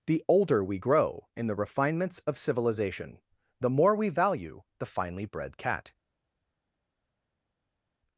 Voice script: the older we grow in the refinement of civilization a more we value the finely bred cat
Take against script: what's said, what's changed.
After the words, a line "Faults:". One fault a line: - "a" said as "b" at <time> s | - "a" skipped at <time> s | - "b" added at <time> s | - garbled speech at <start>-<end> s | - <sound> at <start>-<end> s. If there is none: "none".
the older we grow in the refinements of civilization the more we value the finely bred cat
Faults:
- "refinement" said as "refinements" at 1.6 s
- "a" said as "the" at 3.6 s